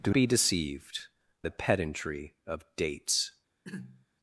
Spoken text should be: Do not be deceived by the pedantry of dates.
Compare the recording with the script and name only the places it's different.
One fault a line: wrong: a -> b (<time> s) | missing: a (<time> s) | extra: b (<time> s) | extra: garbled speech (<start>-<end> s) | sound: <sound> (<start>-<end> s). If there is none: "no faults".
missing: not (0.1 s)
missing: by (1.1 s)
sound: throat clearing (3.6-4.1 s)